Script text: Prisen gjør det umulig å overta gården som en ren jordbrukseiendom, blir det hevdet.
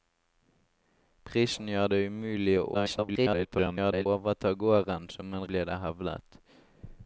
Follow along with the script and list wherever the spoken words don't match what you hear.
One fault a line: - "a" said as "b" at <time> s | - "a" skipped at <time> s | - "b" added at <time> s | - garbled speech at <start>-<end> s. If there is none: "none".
- garbled speech at 2.7-4.1 s
- "ren jordbrukseiendom" skipped at 5.5 s